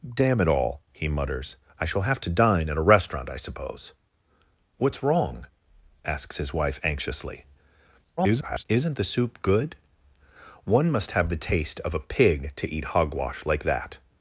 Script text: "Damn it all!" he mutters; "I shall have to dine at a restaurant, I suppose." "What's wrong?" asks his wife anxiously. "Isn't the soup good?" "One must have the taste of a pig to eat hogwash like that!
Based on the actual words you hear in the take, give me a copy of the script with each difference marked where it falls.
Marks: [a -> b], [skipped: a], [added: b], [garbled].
"Damn it all!" he mutters; "I shall have to dine at a restaurant, I suppose." "What's wrong?" asks his wife anxiously. [garbled] "Isn't the soup good?" "One must have the taste of a pig to eat hogwash like that!